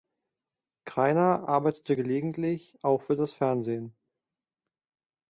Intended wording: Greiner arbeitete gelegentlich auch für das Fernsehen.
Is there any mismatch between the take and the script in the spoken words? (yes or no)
no